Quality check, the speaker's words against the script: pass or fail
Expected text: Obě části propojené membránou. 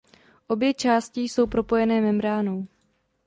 fail